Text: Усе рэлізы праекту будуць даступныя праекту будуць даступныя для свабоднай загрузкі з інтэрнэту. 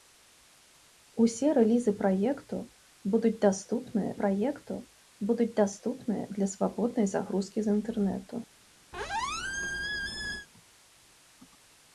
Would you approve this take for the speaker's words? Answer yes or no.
yes